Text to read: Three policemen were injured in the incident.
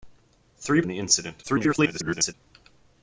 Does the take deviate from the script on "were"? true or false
true